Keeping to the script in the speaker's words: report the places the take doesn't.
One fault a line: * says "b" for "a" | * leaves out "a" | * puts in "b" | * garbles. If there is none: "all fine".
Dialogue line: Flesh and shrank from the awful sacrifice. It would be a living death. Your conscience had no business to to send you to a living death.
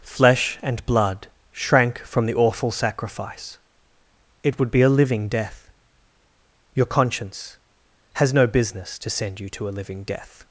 * puts in "blood"
* says "has" for "had"
* leaves out "to"